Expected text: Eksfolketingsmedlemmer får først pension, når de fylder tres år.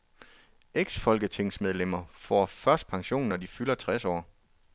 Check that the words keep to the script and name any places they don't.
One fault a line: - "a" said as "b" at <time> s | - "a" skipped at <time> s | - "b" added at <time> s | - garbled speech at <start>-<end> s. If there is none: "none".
none